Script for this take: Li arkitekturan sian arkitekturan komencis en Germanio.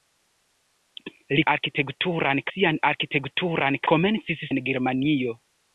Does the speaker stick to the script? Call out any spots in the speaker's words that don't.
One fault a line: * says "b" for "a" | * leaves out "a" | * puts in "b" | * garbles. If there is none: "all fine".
all fine